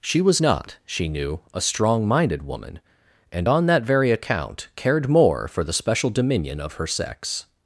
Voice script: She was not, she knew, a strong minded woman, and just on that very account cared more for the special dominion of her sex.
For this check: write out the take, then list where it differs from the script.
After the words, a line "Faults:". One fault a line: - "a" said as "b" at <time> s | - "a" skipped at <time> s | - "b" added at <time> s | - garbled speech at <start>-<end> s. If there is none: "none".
She was not, she knew, a strong minded woman, and on that very account cared more for the special dominion of her sex.
Faults:
- "just" skipped at 3.5 s